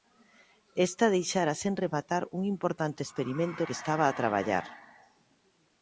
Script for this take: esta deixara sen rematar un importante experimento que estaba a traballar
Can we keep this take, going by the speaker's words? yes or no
yes